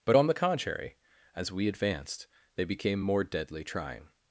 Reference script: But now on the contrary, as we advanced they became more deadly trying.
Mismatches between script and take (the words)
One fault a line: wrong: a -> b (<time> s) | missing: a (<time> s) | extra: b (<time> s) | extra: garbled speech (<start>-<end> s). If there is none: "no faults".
missing: now (0.2 s)